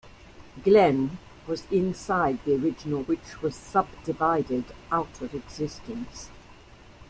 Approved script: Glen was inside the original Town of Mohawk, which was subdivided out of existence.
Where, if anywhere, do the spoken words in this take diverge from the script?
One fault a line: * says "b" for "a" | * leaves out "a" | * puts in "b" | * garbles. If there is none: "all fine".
* leaves out "Town of Mohawk"